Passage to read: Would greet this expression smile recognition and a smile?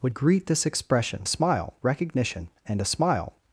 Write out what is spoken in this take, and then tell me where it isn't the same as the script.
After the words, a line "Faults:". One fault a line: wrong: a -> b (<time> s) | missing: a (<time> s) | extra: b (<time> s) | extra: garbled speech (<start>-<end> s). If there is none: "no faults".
Would greet this expression smile recognition and a smile?
Faults:
no faults